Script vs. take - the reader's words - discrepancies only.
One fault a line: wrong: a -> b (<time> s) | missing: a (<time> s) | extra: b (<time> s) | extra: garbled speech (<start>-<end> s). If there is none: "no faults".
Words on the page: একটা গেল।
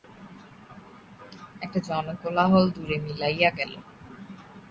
extra: জনকোলাহল দূরে মিলাইয়া (1.9 s)